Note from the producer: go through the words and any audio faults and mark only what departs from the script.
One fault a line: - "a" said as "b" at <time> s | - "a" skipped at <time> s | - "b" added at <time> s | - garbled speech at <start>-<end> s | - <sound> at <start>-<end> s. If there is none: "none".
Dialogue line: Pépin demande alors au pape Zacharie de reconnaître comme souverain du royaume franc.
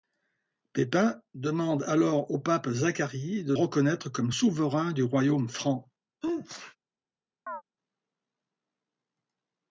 - sneeze at 6.2-6.8 s
- chirp at 7.5-7.6 s